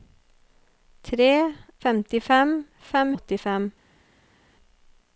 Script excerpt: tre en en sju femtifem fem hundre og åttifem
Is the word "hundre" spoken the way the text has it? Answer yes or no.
no